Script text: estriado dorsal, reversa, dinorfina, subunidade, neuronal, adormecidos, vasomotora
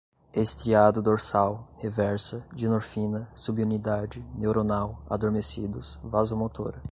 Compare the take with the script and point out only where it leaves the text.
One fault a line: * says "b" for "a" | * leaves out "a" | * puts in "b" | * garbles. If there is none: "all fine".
all fine